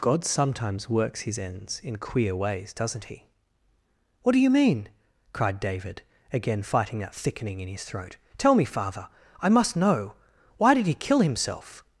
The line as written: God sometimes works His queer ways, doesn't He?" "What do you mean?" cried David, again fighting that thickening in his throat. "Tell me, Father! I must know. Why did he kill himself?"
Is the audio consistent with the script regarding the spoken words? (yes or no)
no